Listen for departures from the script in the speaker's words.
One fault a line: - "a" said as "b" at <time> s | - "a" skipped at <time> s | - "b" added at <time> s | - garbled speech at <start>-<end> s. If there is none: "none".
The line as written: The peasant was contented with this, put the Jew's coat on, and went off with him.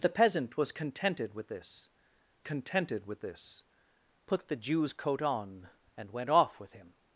- "contented with this" added at 2.4 s